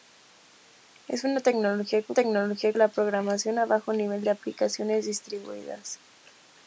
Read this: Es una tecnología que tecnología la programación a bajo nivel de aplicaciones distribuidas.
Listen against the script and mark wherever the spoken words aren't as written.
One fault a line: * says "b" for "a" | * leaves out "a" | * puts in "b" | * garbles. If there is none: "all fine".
all fine